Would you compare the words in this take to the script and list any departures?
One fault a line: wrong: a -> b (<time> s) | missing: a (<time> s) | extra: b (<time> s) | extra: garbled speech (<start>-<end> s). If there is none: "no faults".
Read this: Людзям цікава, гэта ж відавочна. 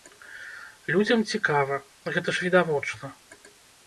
no faults